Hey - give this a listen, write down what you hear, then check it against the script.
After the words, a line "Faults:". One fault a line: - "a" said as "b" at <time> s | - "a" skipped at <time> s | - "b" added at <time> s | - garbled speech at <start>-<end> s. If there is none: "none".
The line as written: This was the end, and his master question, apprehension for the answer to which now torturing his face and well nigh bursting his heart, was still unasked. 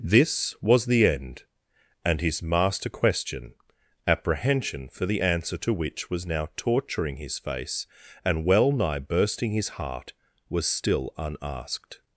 This was the end, and his master question, apprehension for the answer to which was now torturing his face and well nigh bursting his heart, was still unasked.
Faults:
- "was" added at 6.1 s